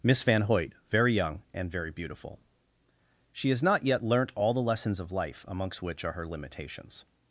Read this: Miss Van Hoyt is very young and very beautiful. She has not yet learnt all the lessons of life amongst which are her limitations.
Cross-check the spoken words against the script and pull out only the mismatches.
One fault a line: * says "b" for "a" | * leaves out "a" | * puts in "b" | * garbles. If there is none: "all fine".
* leaves out "is"